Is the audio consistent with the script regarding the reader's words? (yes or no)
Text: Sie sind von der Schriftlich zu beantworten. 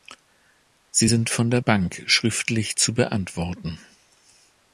no